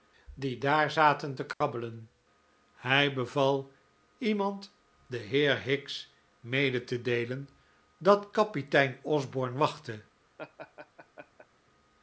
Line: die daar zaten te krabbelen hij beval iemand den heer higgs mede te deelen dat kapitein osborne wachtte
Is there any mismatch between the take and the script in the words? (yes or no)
no